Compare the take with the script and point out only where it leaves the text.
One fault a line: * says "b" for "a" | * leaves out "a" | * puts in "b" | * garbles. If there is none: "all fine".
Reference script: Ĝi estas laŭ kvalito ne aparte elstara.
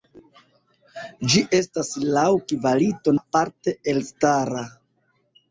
* leaves out "ne"